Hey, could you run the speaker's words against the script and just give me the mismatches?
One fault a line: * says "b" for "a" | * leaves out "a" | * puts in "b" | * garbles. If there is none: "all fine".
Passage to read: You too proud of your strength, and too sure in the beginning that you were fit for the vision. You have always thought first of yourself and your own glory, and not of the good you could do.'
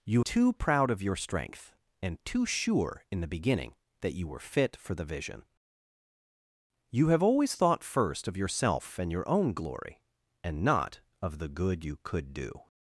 all fine